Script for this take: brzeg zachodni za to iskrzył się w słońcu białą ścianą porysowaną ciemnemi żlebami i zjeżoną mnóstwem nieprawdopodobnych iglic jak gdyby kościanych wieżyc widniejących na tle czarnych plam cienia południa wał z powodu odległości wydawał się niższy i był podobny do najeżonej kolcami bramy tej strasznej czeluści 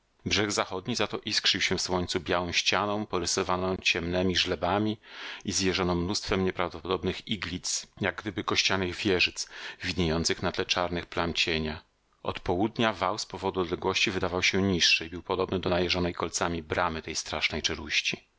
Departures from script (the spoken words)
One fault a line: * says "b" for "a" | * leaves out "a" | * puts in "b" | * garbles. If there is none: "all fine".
* puts in "od"